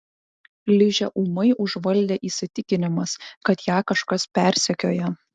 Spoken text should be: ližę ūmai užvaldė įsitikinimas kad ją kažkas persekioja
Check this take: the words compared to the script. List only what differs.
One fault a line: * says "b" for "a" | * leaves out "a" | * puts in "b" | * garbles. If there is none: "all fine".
all fine